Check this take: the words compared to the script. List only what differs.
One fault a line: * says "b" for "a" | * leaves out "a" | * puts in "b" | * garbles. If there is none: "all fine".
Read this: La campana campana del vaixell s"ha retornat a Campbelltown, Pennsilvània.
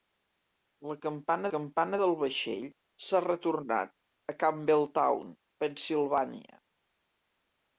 all fine